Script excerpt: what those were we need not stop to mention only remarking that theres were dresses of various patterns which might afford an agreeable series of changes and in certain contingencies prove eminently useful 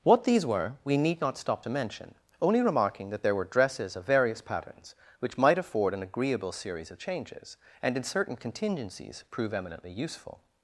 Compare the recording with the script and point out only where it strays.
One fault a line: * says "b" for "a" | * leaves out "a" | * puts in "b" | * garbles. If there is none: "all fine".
* says "these" for "those"
* says "there" for "theres"